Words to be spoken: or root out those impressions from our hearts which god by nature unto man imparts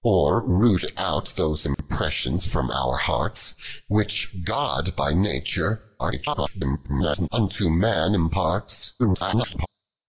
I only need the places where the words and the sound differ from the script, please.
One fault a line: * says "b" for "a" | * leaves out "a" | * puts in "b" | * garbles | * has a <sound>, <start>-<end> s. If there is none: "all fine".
* has a dropout, 1.7-1.8 s
* garbles
* garbles